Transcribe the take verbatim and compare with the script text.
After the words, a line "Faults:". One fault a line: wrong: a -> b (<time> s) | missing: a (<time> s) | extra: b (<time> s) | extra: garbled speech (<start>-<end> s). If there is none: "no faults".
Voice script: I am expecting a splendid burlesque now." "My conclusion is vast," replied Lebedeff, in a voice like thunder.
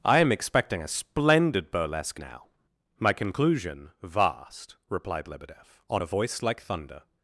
I am expecting a splendid burlesque now." "My conclusion vast," replied Lebedeff, on a voice like thunder.
Faults:
missing: is (3.9 s)
wrong: in -> on (5.9 s)